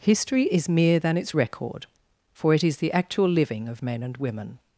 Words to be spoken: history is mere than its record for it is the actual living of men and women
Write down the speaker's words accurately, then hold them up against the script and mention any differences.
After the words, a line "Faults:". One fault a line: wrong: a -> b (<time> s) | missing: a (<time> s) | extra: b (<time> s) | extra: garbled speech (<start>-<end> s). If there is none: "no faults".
history is mere than its record for it is the actual living of men and women
Faults:
no faults